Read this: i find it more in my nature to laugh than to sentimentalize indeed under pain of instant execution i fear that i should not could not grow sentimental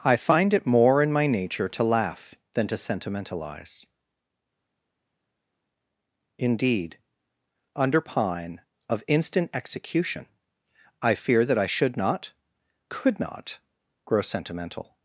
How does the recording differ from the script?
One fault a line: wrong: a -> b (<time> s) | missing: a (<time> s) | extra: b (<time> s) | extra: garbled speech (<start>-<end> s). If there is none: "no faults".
wrong: pain -> pine (8.0 s)